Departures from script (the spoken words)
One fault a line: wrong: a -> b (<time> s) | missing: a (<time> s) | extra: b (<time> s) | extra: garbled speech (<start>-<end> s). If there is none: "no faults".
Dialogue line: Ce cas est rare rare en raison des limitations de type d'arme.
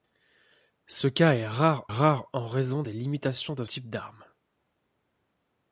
no faults